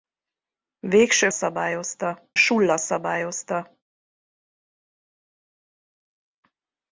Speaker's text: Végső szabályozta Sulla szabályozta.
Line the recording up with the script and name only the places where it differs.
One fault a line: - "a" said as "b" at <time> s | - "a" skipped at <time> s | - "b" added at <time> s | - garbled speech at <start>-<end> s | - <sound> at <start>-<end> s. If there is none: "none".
none